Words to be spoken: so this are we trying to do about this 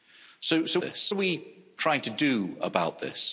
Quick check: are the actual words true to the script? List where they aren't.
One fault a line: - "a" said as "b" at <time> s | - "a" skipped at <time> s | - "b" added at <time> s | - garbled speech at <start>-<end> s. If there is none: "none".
none